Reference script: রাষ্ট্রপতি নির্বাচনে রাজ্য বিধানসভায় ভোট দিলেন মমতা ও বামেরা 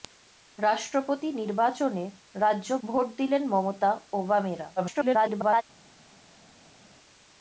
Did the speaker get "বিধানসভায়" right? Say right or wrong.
wrong